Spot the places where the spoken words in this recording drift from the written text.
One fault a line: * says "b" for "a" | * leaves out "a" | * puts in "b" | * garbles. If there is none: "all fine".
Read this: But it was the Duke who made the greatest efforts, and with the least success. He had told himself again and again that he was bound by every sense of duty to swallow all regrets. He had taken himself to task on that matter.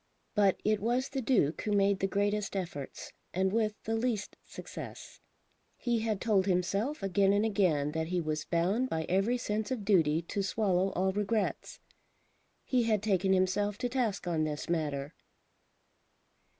* says "this" for "that"